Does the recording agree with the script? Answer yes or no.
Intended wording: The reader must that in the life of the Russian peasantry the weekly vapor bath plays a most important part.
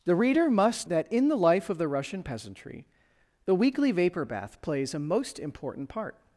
yes